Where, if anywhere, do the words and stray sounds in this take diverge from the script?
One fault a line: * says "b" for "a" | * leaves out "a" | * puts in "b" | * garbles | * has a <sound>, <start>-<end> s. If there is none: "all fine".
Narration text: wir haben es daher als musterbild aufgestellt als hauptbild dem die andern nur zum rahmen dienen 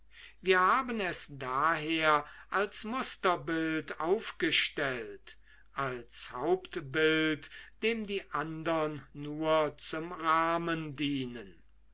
all fine